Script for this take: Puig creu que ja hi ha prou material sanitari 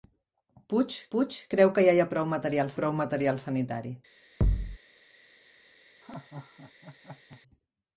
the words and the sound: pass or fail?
fail